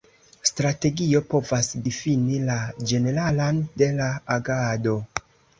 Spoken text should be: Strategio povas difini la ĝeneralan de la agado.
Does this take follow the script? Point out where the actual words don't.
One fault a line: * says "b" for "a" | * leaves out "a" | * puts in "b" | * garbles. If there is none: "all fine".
all fine